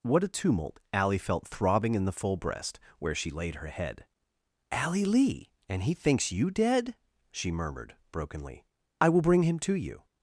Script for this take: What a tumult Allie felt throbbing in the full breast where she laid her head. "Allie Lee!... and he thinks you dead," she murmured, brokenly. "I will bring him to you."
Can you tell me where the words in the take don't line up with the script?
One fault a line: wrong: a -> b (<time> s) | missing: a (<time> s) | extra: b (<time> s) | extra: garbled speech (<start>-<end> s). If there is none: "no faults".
no faults